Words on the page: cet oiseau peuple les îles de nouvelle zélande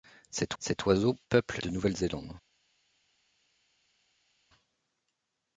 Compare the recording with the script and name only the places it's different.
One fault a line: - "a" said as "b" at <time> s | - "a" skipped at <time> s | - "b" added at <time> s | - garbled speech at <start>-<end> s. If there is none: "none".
- "cet" added at 0.6 s
- "les îles" skipped at 1.6 s